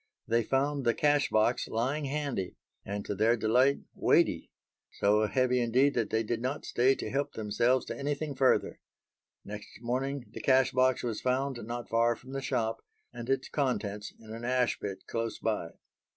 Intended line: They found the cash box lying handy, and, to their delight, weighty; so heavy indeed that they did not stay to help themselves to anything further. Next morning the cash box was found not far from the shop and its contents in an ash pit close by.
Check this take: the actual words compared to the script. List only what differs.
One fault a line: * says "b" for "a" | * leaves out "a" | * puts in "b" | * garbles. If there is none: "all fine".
all fine